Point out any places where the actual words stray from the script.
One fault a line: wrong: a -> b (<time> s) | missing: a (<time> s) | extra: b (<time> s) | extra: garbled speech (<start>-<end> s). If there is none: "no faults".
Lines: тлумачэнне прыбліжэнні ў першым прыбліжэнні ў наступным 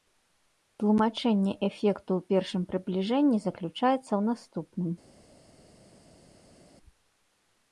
wrong: прыбліжэнні -> эфекту (1.7 s)
extra: заключаецца (3.5 s)